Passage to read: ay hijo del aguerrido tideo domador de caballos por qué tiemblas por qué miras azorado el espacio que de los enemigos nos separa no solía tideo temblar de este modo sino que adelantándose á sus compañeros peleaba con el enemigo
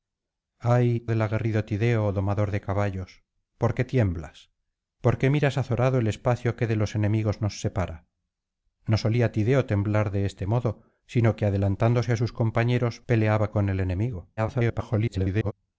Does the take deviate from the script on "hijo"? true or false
true